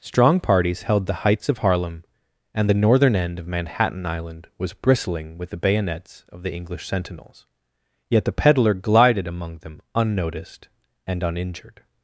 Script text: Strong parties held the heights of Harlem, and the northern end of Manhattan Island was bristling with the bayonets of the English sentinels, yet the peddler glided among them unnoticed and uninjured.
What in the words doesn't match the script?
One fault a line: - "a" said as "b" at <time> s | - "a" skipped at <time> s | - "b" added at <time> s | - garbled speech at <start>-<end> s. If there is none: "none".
none